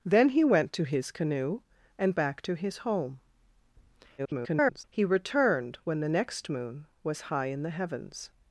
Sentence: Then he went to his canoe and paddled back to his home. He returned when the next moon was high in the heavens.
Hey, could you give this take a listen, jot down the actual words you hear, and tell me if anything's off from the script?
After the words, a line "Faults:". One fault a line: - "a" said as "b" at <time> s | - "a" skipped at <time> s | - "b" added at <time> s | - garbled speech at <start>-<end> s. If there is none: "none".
Then he went to his canoe and back to his home. [garbled] He returned when the next moon was high in the heavens.
Faults:
- "paddled" skipped at 2.2 s
- garbled speech at 4.2-4.8 s